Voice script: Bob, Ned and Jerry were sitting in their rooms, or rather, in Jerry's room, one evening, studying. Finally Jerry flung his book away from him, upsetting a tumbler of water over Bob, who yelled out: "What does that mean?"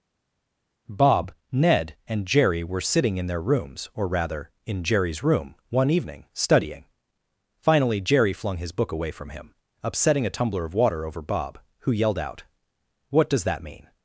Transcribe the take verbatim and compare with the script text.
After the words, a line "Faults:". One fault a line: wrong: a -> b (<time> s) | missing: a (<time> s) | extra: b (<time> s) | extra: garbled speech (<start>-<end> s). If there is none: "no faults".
Bob, Ned and Jerry were sitting in their rooms, or rather, in Jerry's room, one evening, studying. Finally Jerry flung his book away from him, upsetting a tumbler of water over Bob, who yelled out: "What does that mean?"
Faults:
no faults